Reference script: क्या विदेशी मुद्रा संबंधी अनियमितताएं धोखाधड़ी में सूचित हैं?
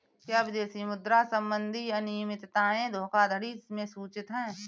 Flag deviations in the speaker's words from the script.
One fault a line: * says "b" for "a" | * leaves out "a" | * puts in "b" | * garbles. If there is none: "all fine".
all fine